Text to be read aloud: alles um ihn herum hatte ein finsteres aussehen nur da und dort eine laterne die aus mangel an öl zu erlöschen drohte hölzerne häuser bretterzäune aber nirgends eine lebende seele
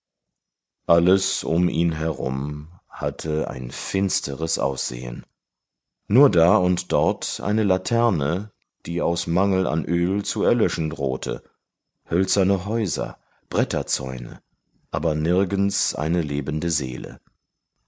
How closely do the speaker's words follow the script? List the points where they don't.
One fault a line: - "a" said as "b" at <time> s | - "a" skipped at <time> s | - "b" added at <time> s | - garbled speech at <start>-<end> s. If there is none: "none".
none